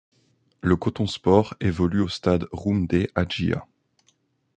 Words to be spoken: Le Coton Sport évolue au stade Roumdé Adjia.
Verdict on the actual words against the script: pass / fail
pass